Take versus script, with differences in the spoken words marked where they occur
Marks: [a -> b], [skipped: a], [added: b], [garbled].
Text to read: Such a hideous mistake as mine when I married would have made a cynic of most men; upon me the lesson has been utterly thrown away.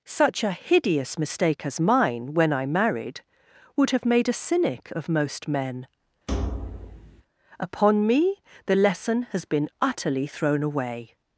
Such a hideous mistake as mine when I married would have made a cynic of most men; upon me the lesson has been utterly thrown away.